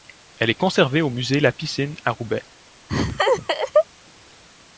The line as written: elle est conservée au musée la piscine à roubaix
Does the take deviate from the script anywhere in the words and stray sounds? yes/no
yes